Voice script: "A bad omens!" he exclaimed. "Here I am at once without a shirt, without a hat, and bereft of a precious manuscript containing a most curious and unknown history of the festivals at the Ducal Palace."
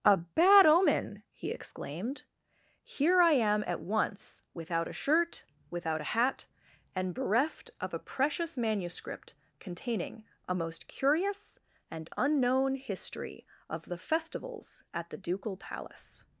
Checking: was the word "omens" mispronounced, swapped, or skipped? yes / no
yes